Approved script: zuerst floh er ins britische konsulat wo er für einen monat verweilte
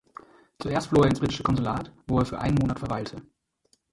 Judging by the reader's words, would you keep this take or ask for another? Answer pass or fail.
pass